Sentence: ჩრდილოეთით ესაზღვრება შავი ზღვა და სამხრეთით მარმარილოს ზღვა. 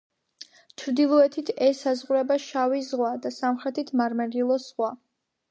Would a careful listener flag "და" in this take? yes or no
no